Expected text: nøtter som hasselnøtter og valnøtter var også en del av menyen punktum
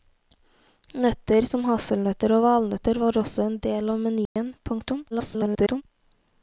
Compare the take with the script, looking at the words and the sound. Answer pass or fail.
fail